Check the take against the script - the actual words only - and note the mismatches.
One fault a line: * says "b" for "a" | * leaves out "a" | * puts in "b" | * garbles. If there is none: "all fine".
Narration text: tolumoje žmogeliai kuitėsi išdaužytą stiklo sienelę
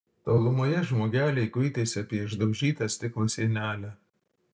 * puts in "apie"